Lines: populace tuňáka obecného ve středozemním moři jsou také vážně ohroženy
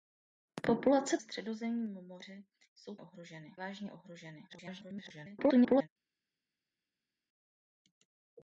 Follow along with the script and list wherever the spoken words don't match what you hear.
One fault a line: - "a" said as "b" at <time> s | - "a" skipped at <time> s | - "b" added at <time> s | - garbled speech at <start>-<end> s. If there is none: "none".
- "tuňáka obecného ve" skipped at 1.2 s
- "také" said as "ohroženy" at 3.0 s
- garbled speech at 4.5-5.9 s